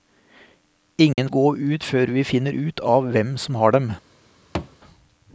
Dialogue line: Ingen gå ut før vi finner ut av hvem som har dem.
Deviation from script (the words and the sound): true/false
true